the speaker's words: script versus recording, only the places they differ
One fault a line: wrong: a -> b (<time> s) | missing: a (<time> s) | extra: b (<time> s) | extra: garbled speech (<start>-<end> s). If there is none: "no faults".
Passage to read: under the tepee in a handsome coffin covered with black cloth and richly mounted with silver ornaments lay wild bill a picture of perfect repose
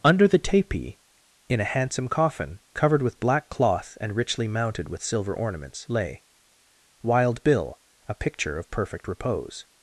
no faults